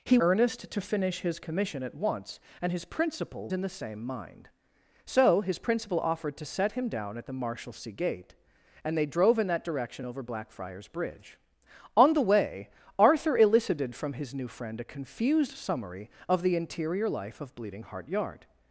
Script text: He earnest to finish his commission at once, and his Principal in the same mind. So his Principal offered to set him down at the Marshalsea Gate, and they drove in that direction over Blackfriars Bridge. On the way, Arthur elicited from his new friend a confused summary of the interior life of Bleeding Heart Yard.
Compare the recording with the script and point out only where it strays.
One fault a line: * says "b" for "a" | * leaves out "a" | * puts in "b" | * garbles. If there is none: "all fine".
all fine